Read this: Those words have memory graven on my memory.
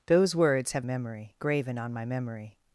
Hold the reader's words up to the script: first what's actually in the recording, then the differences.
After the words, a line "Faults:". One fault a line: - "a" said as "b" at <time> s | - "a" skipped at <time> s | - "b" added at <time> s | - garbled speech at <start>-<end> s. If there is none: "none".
Those words have memory graven on my memory.
Faults:
none